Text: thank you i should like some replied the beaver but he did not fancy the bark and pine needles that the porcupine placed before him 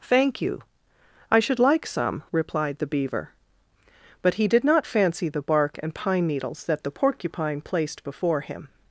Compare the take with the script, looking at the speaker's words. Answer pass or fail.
pass